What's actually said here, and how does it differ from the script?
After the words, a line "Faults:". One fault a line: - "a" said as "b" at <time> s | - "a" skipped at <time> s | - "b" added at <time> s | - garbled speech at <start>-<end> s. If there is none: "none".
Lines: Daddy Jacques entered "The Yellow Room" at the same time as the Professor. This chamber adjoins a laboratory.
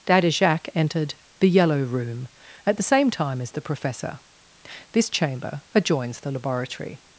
Daddy Jacques entered "The Yellow Room" at the same time as the Professor. This chamber adjoins the laboratory.
Faults:
- "a" said as "the" at 6.2 s